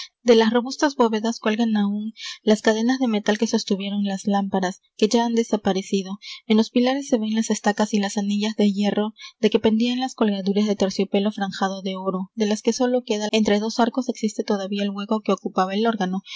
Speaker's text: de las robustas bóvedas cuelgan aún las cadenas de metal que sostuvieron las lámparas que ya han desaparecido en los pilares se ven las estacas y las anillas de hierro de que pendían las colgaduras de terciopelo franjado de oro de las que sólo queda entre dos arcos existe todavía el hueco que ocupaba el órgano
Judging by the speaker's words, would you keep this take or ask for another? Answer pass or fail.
pass